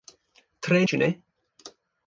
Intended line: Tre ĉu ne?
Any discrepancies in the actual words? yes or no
no